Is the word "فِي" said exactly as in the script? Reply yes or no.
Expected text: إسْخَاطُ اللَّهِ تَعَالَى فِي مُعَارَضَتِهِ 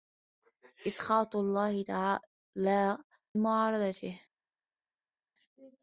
no